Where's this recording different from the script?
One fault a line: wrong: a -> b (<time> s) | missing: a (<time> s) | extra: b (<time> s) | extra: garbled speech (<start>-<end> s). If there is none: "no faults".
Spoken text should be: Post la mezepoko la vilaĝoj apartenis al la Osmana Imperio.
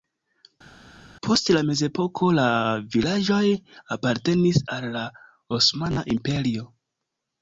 no faults